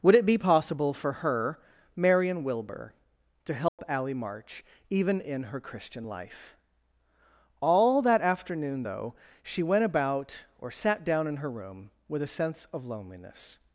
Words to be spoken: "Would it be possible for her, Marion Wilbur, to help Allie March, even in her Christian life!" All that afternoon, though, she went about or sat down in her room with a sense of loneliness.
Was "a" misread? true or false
false